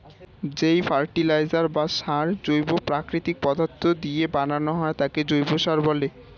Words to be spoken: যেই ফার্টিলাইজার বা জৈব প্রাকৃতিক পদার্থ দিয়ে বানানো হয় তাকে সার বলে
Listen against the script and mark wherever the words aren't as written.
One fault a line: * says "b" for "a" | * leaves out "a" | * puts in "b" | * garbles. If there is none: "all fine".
* puts in "সার"
* puts in "জৈব"